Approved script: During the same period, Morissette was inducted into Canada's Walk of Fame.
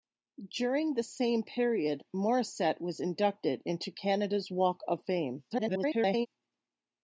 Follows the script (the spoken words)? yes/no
no